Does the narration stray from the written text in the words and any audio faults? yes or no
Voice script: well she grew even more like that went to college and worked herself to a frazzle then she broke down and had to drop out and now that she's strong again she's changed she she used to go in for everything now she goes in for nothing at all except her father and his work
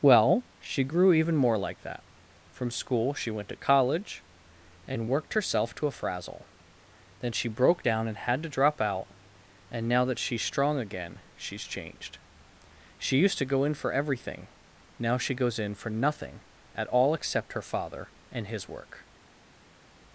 yes